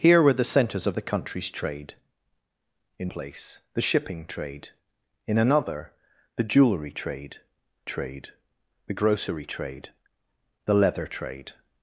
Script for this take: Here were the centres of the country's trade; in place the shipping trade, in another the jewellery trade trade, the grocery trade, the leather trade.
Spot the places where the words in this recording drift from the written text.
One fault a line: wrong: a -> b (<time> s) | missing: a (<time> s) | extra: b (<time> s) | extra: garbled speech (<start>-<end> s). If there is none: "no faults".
no faults